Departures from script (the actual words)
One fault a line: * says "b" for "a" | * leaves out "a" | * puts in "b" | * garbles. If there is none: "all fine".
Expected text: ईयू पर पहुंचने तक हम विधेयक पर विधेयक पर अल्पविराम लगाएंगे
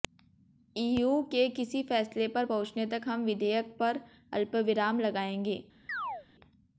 * puts in "के किसी फैसले"
* leaves out "विधेयक पर"